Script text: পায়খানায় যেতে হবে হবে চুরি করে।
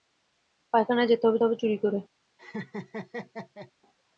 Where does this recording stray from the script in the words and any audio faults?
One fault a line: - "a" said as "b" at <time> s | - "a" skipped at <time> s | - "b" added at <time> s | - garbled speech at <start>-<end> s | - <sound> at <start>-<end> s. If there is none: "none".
- laugh at 2.4-3.7 s